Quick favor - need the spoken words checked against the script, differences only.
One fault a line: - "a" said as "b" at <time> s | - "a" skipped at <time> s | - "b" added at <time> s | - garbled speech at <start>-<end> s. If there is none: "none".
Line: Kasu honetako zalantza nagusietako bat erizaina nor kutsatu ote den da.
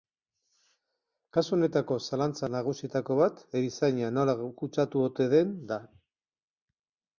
- "nor" said as "nola" at 4.2 s